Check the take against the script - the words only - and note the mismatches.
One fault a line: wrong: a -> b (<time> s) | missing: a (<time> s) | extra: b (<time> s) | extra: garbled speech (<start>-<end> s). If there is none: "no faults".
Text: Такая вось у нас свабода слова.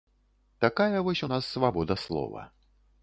no faults